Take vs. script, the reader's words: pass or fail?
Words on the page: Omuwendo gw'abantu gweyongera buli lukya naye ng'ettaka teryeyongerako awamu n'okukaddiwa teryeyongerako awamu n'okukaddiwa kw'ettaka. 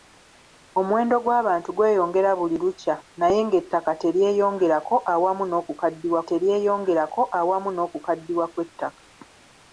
pass